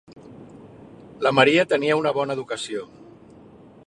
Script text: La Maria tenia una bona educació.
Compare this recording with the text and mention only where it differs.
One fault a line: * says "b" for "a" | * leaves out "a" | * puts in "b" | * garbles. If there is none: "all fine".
all fine